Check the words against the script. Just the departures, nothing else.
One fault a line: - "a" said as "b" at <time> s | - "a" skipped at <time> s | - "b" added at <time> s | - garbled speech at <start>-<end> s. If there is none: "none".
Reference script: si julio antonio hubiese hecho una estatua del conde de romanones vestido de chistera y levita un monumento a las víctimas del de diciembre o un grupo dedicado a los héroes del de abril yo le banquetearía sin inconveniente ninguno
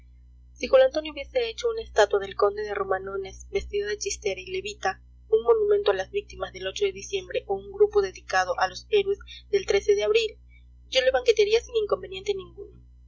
none